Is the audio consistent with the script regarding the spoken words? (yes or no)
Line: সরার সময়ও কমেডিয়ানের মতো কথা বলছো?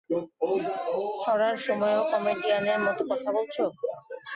yes